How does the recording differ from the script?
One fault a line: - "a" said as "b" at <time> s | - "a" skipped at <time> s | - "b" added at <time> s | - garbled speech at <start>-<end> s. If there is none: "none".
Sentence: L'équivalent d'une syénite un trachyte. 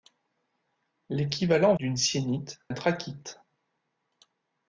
none